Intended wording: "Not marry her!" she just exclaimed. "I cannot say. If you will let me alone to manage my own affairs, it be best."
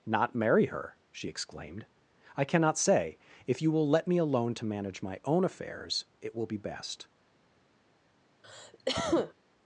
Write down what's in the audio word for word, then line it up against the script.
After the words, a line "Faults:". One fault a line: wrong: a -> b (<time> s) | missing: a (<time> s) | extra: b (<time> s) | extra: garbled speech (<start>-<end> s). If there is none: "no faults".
"Not marry her!" she exclaimed. "I cannot say. If you will let me alone to manage my own affairs, it will be best."
Faults:
missing: just (1.3 s)
extra: will (6.4 s)